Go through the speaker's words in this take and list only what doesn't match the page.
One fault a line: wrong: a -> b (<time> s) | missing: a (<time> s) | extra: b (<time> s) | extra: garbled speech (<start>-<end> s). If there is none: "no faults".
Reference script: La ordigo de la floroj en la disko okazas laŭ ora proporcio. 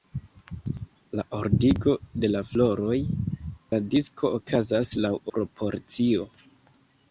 missing: en (3.0 s)
missing: ora (5.1 s)